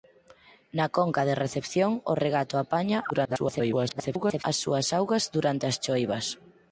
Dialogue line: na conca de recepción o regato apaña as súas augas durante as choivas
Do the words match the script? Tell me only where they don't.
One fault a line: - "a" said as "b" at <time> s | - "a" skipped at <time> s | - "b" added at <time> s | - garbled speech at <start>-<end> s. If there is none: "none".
- garbled speech at 3.1-4.4 s